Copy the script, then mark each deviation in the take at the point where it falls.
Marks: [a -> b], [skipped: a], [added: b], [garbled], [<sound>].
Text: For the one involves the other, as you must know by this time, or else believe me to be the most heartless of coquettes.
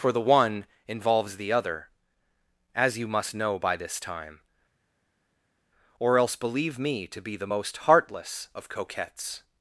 For the one involves the other, as you must know by this time, or else believe me to be the most heartless of coquettes.